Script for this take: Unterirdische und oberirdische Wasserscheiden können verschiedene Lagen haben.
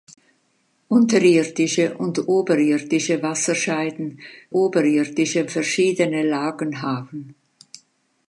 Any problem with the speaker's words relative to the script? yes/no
yes